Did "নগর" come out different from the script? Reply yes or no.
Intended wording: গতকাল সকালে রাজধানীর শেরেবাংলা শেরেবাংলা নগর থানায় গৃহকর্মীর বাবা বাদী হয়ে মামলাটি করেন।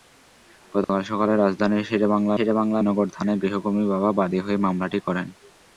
no